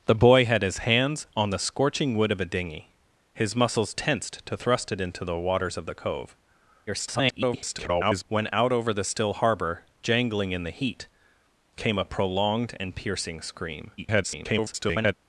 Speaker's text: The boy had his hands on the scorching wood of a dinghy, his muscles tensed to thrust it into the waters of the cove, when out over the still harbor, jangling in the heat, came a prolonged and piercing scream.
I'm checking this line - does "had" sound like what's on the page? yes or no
yes